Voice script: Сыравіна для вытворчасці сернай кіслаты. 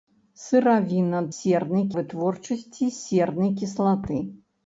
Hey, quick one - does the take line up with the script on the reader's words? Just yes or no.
no